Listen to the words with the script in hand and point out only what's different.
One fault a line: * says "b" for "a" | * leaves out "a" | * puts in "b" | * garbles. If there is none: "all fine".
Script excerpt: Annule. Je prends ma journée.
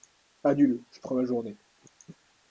all fine